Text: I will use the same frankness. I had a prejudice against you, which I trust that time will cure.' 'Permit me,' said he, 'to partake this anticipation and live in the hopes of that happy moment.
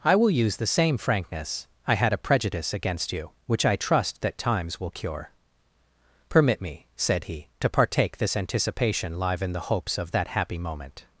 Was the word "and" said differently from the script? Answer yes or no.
yes